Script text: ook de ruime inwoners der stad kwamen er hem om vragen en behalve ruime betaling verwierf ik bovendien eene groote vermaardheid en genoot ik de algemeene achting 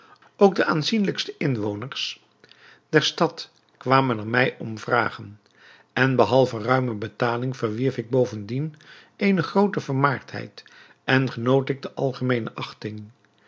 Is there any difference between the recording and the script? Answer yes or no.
yes